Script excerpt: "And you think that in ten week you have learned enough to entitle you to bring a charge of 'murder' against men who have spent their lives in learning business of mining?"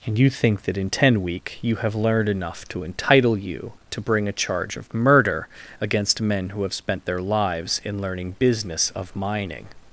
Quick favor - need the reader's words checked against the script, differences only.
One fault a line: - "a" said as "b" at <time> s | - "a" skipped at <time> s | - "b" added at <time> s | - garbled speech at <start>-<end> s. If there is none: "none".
none